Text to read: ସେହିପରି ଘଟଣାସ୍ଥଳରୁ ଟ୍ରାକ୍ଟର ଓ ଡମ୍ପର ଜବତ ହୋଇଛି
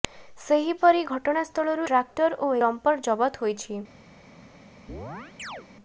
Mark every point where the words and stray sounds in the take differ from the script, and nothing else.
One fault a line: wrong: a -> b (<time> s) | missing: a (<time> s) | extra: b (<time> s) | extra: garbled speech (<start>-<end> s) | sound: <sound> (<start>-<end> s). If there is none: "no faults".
sound: chirp (4.9-5.7 s)